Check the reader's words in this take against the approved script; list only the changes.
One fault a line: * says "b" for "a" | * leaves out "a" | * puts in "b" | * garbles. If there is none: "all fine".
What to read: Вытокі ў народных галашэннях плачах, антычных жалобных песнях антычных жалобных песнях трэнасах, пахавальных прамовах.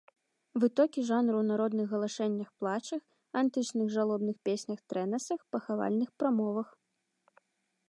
* puts in "жанру"
* leaves out "антычных жалобных песнях"